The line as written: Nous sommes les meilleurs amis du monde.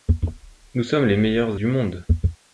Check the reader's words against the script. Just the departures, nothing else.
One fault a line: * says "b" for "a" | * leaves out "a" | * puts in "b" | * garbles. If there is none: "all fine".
* leaves out "amis"